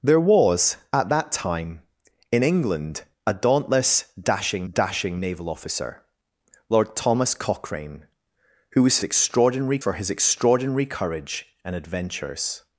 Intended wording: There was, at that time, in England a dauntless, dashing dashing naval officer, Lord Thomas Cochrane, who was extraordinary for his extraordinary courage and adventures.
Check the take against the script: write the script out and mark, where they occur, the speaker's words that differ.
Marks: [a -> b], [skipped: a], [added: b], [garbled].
There was, at that time, in England a dauntless, dashing dashing naval officer, Lord Thomas Cochrane, who was extraordinary for his extraordinary courage and adventures.